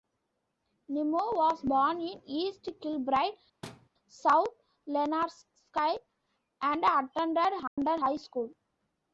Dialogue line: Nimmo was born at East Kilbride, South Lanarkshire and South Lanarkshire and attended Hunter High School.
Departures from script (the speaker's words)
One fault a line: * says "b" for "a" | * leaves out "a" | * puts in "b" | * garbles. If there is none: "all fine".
* says "in" for "at"
* leaves out "South Lanarkshire and"